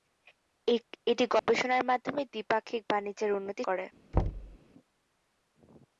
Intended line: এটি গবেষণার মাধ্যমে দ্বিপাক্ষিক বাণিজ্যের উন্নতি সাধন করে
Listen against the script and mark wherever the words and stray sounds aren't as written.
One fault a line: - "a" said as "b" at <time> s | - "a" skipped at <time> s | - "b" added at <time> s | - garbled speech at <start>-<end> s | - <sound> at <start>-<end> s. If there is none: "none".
- dropout at 1.4-1.5 s
- "সাধন" skipped at 3.6 s
- thud at 4.1-4.6 s